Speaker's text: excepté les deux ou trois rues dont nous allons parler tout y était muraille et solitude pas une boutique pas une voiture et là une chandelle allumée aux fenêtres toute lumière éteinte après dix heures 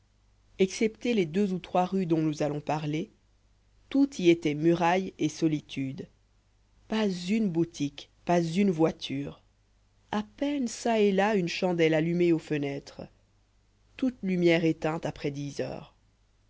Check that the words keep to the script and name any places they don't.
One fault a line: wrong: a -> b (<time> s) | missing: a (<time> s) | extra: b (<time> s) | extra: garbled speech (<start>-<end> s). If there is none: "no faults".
extra: à peine çà (10.1 s)